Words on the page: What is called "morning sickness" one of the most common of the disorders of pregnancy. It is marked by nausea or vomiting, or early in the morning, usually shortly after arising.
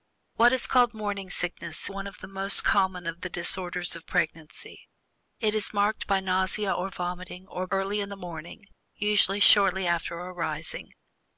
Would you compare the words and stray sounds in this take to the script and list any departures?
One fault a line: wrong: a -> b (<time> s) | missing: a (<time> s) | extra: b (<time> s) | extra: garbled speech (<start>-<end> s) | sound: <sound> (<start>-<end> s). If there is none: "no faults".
no faults